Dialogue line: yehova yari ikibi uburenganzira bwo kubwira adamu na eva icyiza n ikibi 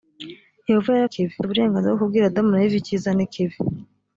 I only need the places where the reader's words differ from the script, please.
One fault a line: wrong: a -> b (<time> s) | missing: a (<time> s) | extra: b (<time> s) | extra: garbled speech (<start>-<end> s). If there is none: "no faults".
no faults